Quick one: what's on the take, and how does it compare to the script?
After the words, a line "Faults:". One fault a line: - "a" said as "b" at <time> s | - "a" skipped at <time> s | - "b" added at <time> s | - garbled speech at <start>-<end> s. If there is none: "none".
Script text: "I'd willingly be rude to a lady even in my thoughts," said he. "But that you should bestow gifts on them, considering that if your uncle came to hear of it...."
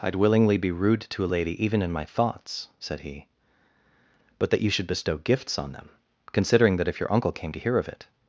"I'd willingly be rude to a lady even in my thoughts," said he. "But that you should bestow gifts on them, considering that if your uncle came to hear of it...."
Faults:
none